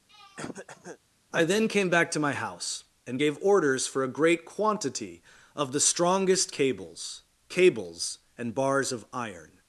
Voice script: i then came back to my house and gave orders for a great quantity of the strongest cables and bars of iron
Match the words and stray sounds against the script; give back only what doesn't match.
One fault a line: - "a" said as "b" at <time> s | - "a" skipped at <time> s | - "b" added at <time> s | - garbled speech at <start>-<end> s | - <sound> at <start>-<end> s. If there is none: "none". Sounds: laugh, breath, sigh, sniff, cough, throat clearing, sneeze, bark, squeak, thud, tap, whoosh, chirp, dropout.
- throat clearing at 0.1-1.0 s
- "cables" added at 7.5 s